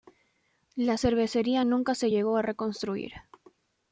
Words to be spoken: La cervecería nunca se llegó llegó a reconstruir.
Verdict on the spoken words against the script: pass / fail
fail